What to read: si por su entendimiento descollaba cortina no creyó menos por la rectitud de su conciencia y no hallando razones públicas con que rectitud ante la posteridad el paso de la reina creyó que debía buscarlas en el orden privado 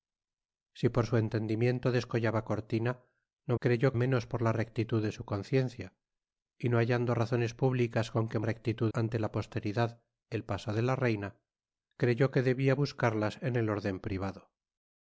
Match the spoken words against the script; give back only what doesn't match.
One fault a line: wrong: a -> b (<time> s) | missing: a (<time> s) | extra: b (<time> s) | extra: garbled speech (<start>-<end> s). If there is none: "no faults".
no faults